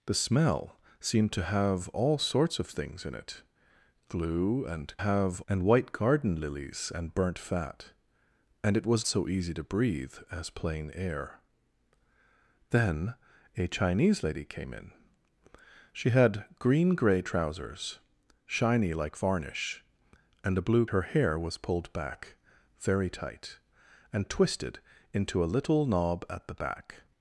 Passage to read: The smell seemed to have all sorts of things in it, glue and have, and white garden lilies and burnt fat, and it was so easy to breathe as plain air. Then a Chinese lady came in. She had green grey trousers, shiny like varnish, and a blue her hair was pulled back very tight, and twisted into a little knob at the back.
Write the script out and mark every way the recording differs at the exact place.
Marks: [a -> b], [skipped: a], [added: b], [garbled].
The smell seemed to have all sorts of things in it, glue and have, and white garden lilies and burnt fat, and it was so easy to breathe as plain air. Then a Chinese lady came in. She had green grey trousers, shiny like varnish, and a blue her hair was pulled back very tight, and twisted into a little knob at the back.